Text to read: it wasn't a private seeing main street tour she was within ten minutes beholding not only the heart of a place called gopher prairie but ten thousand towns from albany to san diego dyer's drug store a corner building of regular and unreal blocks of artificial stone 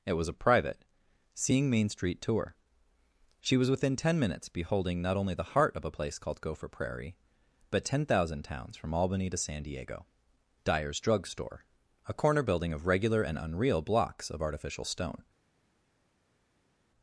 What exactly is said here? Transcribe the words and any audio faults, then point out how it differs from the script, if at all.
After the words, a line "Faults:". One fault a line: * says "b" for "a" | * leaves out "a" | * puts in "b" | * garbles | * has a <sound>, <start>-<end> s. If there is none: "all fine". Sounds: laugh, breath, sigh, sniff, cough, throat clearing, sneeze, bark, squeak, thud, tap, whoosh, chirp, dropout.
it was a private seeing main street tour she was within ten minutes beholding not only the heart of a place called gopher prairie but ten thousand towns from albany to san diego dyer's drug store a corner building of regular and unreal blocks of artificial stone
Faults:
* says "was" for "wasn't"